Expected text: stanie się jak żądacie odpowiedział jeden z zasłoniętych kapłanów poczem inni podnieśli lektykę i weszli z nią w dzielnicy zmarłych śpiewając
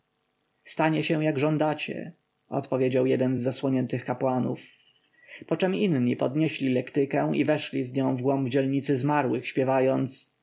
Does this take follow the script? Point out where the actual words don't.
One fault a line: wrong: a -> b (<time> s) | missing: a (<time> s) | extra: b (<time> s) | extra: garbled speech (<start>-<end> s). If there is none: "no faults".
extra: głąb (8.2 s)